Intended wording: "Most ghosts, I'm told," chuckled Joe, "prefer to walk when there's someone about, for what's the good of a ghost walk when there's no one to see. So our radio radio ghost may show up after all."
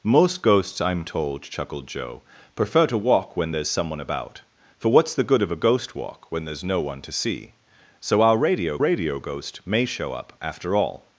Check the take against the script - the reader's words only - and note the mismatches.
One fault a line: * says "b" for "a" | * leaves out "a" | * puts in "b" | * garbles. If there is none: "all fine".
all fine